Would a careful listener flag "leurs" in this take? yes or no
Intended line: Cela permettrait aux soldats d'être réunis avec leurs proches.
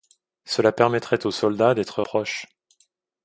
yes